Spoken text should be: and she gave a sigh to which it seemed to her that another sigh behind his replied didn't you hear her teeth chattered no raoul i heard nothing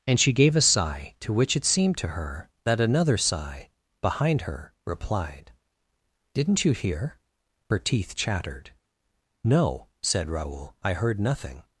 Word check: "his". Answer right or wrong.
wrong